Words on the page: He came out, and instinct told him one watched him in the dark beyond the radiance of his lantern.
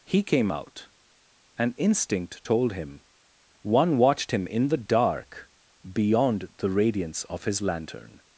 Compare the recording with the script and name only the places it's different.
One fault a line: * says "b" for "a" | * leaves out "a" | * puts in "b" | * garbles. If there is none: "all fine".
all fine